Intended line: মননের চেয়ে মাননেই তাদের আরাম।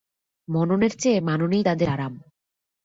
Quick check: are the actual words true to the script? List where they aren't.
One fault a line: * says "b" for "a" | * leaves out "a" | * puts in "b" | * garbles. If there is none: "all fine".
all fine